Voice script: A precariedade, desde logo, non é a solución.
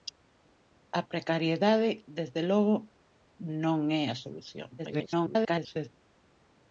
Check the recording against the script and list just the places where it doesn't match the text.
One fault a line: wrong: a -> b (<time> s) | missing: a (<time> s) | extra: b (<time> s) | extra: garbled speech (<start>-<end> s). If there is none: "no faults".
extra: garbled speech (4.8-5.9 s)